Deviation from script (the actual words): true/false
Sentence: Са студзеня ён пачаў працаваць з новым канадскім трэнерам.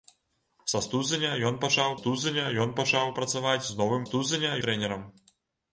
true